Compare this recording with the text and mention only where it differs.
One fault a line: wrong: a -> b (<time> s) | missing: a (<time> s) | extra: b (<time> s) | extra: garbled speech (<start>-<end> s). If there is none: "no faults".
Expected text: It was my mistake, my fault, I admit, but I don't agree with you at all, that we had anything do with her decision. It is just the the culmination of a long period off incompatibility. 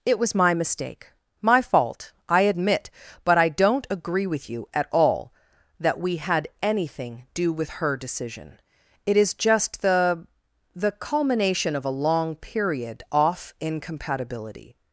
no faults